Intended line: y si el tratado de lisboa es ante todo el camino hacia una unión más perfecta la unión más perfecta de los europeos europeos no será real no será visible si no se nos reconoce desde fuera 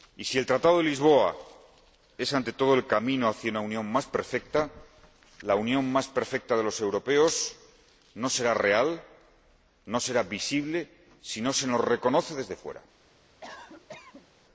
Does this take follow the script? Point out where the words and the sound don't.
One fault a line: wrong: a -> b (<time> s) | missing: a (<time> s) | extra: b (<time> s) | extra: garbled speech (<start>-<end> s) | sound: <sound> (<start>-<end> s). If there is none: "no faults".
missing: europeos (7.5 s)
sound: cough (13.4-14.3 s)